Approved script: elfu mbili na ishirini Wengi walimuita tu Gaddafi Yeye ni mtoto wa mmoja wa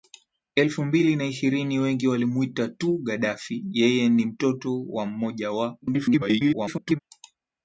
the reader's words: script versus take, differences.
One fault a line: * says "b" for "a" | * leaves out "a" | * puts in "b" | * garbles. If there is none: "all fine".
* garbles